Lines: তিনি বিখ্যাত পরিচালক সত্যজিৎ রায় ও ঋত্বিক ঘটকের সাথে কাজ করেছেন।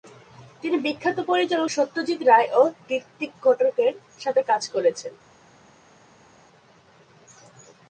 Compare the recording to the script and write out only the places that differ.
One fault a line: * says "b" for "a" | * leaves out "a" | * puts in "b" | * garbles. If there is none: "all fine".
all fine